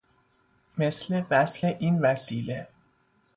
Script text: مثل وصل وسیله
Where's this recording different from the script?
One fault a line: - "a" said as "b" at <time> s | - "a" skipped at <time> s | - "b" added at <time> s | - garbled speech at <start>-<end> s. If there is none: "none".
- "این" added at 1.6 s